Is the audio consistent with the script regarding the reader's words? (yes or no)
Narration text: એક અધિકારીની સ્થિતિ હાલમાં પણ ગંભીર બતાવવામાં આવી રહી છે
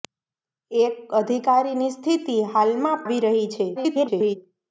no